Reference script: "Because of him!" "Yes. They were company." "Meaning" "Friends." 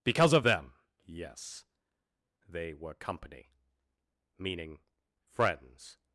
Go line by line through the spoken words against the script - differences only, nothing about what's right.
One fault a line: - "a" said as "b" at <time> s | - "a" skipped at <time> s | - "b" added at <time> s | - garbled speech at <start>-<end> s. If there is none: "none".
- "him" said as "them" at 0.4 s